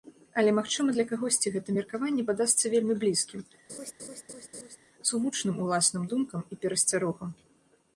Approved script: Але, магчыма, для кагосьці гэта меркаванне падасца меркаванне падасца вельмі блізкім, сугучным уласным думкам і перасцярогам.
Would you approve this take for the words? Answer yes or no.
no